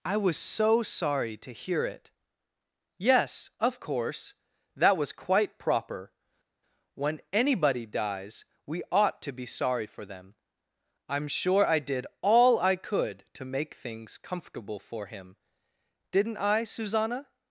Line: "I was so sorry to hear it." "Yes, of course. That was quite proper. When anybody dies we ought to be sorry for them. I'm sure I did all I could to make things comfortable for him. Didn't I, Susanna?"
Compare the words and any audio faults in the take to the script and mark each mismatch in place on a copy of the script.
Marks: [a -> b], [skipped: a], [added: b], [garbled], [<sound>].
"I was so sorry to hear it." "Yes, of course. That was quite proper. When anybody dies we ought to be sorry for them. I'm sure I did all I could to make things comfortable for him. Didn't I, Susanna?"